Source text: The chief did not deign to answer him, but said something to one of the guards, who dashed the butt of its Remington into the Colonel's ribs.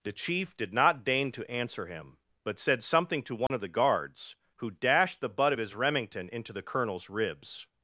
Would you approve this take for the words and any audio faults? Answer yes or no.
no